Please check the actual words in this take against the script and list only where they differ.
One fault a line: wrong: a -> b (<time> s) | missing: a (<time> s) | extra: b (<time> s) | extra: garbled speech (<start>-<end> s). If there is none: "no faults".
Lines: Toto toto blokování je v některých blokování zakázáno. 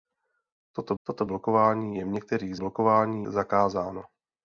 no faults